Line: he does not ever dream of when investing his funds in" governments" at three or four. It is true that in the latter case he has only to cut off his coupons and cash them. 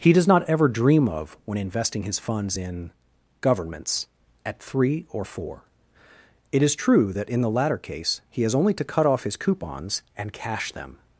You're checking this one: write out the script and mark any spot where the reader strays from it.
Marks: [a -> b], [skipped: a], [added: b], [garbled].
he does not ever dream of when investing his funds in" governments" at three or four. It is true that in the latter case he has only to cut off his coupons and cash them.